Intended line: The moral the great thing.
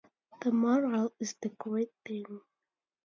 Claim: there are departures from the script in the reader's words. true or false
true